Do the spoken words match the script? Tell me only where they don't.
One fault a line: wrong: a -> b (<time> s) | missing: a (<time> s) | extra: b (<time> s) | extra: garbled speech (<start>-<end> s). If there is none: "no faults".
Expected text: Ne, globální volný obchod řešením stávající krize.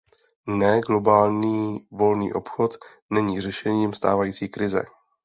extra: není (3.1 s)